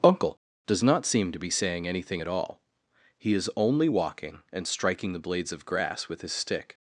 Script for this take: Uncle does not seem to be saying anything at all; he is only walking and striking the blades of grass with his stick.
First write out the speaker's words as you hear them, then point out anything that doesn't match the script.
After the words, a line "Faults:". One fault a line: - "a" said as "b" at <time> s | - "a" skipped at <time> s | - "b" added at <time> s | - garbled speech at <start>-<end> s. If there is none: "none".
Uncle does not seem to be saying anything at all; he is only walking and striking the blades of grass with his stick.
Faults:
none